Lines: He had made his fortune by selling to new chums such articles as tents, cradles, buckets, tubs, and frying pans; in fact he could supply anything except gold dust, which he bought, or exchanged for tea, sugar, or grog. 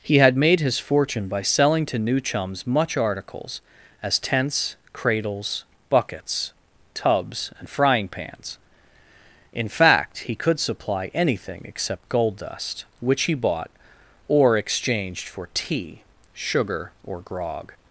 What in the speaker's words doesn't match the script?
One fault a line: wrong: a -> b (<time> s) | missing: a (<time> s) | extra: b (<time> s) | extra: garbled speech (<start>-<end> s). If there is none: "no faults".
wrong: such -> much (2.6 s)